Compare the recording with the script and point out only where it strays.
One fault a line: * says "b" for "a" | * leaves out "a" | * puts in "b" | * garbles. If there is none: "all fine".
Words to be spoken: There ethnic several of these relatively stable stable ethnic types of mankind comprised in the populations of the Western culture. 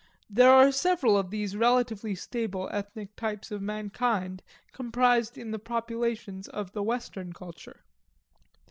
* says "are" for "ethnic"
* leaves out "stable"